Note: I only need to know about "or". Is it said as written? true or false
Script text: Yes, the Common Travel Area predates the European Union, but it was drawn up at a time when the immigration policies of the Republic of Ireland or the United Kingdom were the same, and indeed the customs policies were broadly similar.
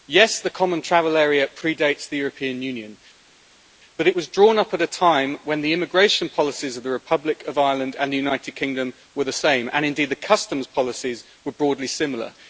false